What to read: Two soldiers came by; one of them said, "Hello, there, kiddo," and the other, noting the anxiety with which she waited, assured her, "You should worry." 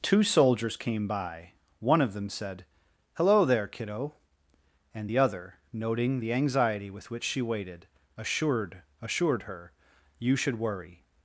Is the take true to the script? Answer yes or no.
no